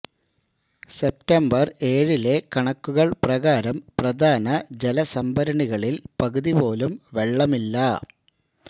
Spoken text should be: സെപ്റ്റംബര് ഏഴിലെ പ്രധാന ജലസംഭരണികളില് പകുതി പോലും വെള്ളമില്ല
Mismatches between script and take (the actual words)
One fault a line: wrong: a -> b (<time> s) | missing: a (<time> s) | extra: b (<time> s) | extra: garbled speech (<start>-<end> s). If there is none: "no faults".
extra: കണക്കുകള് പ്രകാരം (2.5 s)